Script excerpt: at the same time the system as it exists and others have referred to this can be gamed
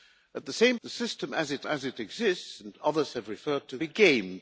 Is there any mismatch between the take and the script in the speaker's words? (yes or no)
yes